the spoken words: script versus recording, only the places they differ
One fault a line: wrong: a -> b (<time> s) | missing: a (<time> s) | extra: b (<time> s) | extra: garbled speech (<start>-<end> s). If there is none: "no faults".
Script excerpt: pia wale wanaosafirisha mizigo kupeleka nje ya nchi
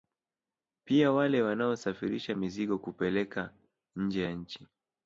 no faults